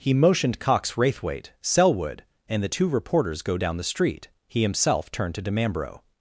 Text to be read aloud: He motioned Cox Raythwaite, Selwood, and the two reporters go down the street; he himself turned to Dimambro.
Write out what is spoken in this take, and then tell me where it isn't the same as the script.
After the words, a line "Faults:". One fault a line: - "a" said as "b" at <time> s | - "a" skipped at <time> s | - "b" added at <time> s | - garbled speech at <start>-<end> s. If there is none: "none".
He motioned Cox Raythwaite, Selwood, and the two reporters go down the street; he himself turned to Dimambro.
Faults:
none